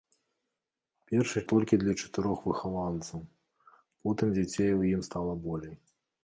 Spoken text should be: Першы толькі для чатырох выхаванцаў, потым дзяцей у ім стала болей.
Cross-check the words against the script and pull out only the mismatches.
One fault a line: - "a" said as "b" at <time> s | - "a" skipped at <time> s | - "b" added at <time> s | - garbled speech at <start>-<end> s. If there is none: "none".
none